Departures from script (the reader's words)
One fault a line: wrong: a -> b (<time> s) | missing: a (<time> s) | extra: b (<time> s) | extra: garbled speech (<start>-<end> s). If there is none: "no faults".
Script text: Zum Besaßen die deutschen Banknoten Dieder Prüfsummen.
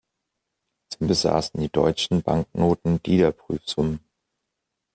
no faults